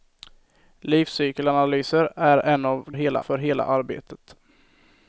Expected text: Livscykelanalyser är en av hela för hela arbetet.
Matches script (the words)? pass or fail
pass